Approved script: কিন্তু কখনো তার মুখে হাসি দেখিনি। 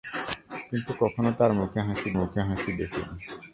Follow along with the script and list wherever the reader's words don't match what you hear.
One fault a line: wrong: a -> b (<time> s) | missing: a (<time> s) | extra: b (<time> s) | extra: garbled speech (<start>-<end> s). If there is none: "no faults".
extra: মুখে হাসি (2.2 s)